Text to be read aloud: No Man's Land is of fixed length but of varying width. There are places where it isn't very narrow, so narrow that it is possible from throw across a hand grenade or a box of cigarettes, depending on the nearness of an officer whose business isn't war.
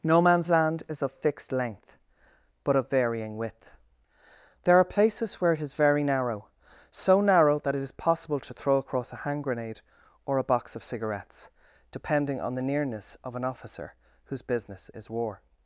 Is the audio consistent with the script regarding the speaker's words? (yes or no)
no